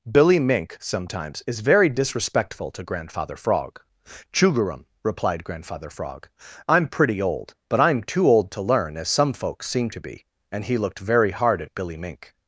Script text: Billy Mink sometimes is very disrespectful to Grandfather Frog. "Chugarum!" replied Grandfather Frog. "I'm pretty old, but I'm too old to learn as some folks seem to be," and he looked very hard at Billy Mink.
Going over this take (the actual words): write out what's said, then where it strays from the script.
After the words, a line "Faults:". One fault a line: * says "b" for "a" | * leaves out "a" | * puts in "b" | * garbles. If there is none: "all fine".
Billy Mink sometimes is very disrespectful to Grandfather Frog. "Chugarum!" replied Grandfather Frog. "I'm pretty old, but I'm too old to learn as some folks seem to be," and he looked very hard at Billy Mink.
Faults:
all fine